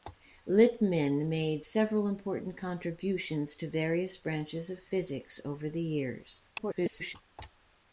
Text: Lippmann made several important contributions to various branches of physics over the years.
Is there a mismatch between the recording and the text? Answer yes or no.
yes